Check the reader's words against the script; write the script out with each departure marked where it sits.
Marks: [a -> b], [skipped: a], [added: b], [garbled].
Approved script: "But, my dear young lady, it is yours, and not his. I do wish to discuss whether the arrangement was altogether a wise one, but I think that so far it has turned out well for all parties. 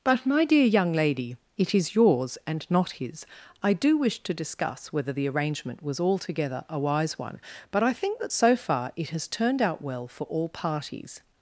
"But, my dear young lady, it is yours, and not his. I do wish to discuss whether the arrangement was altogether a wise one, but I think that so far it has turned out well for all parties.